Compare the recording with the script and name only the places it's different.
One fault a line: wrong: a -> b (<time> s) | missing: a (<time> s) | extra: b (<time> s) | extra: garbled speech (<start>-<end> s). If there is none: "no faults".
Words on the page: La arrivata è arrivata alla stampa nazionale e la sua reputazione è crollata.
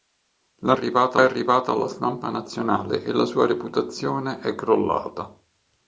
no faults